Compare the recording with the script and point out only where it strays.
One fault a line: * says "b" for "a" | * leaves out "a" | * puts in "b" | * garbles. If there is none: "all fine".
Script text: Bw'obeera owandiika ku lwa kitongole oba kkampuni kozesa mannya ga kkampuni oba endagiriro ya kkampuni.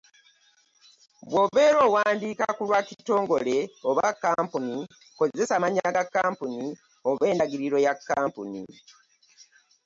all fine